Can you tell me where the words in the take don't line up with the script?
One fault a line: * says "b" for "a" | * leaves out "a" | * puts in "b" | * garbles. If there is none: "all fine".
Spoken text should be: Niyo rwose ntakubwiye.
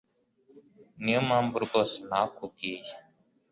* puts in "mpamvu"